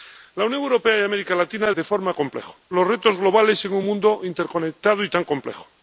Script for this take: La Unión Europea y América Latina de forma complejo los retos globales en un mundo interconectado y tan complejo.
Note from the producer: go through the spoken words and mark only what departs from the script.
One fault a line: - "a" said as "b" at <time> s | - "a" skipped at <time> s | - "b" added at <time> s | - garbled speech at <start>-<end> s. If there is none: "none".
none